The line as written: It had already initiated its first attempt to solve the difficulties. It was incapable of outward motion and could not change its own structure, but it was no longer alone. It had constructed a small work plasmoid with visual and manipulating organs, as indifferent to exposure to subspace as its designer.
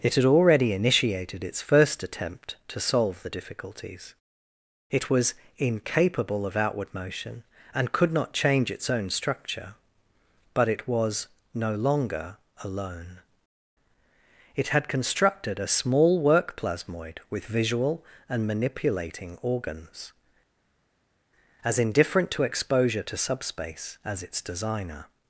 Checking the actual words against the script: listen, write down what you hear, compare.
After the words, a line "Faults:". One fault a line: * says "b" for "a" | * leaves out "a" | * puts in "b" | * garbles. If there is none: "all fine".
It had already initiated its first attempt to solve the difficulties. It was incapable of outward motion and could not change its own structure, but it was no longer alone. It had constructed a small work plasmoid with visual and manipulating organs, as indifferent to exposure to subspace as its designer.
Faults:
all fine